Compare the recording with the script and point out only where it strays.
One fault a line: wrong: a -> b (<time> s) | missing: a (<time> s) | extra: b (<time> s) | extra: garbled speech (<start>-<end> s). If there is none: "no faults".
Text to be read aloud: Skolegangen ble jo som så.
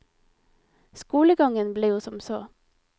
no faults